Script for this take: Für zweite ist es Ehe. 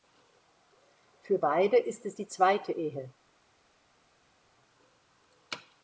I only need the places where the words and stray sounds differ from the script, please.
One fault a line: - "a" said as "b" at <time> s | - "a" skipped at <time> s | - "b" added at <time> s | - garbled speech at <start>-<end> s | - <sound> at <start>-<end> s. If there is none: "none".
- "zweite" said as "beide" at 1.4 s
- "die zweite" added at 2.1 s